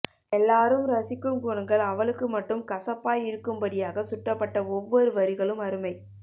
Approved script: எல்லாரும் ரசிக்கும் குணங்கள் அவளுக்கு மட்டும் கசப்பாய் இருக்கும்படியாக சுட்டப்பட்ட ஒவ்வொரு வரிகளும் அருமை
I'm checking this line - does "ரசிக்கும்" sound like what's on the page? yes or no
yes